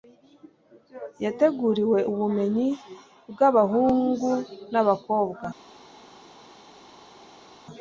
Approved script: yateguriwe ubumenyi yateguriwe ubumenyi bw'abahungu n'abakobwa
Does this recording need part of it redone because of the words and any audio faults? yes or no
yes